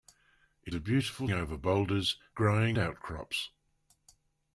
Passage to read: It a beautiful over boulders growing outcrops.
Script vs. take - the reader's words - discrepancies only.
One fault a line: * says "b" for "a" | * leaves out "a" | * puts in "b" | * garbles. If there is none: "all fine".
all fine